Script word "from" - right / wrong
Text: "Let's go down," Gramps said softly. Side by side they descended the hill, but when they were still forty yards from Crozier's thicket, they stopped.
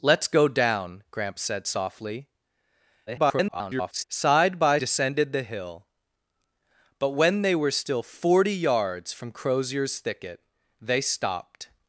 right